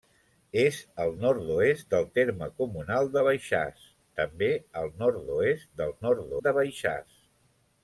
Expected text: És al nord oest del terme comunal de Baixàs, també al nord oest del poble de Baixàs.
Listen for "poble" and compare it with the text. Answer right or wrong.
wrong